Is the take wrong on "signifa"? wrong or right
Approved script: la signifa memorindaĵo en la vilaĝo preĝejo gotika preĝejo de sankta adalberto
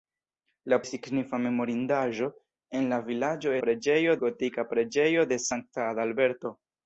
right